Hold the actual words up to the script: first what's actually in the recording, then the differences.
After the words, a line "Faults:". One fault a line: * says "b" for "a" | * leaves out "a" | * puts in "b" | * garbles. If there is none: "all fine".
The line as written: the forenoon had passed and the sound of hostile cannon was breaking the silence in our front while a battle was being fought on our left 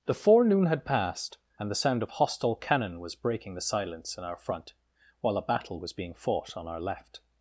the forenoon had passed and the sound of hostile cannon was breaking the silence in our front while a battle was being fought on our left
Faults:
all fine